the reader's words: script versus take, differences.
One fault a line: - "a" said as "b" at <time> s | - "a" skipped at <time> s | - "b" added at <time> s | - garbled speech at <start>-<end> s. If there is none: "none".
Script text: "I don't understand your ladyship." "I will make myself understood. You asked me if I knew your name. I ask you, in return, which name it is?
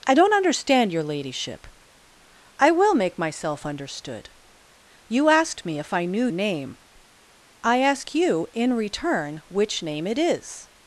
- "your" skipped at 6.3 s